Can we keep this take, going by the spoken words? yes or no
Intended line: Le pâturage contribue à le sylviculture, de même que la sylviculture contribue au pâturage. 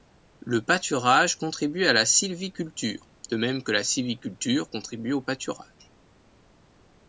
no